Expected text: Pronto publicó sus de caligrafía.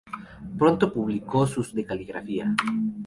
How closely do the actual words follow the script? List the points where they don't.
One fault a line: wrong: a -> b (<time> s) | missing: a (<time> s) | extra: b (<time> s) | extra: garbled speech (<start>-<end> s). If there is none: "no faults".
no faults